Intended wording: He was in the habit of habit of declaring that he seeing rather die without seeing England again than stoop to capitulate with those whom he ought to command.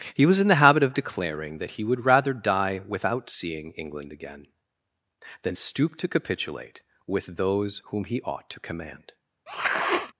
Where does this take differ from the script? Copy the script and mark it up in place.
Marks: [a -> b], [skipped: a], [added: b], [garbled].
He was in the habit of [skipped: habit of] declaring that he [seeing -> would] rather die without seeing England again than stoop to capitulate with those whom he ought to command.